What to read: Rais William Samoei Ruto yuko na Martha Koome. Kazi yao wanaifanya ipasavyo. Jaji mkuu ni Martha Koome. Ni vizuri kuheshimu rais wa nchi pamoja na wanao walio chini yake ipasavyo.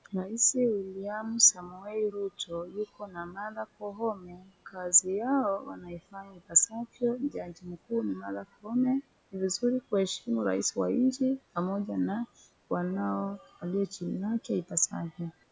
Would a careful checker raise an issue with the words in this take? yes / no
no